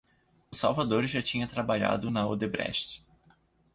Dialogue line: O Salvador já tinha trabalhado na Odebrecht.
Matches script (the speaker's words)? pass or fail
pass